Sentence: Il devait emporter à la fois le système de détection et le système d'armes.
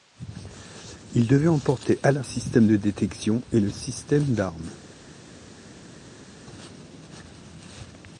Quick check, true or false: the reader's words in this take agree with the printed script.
false